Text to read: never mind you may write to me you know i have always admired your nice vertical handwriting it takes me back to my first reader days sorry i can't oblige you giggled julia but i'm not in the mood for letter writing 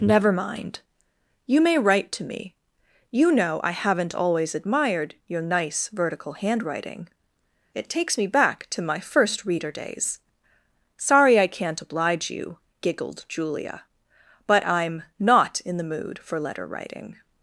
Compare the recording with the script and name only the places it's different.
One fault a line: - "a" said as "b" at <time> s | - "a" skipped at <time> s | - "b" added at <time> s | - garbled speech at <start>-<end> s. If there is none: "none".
- "have" said as "haven't" at 3.7 s